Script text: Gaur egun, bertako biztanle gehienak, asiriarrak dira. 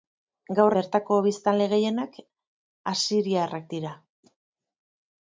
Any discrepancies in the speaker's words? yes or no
yes